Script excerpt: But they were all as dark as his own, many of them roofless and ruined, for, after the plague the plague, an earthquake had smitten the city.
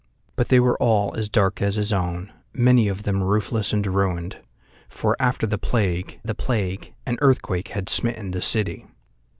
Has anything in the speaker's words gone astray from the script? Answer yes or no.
no